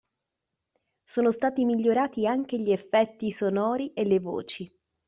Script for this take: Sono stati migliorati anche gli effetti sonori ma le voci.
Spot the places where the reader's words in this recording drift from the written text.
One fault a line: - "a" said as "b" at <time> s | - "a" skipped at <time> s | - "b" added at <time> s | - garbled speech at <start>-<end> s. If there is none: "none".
- "ma" said as "e" at 3.9 s